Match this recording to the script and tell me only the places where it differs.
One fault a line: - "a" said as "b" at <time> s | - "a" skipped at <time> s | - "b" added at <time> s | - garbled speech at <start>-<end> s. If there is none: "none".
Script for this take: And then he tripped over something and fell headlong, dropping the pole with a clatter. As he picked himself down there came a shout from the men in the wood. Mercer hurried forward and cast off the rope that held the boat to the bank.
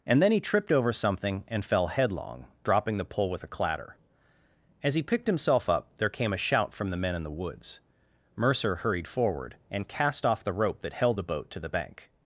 - "down" said as "up" at 5.7 s
- "wood" said as "woods" at 7.3 s